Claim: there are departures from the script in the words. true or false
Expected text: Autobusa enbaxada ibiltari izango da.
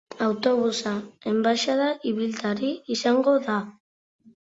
false